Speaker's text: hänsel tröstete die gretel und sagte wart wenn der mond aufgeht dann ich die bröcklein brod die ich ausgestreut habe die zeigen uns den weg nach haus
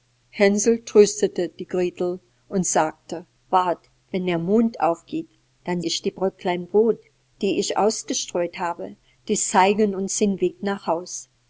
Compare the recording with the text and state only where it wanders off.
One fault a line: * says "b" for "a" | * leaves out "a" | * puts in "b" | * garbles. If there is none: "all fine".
all fine